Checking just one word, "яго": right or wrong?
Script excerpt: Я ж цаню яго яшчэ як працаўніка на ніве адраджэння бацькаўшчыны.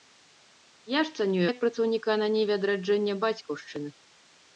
wrong